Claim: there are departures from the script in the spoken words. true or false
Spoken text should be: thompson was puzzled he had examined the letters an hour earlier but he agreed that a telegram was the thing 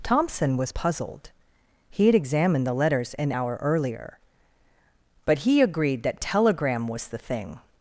true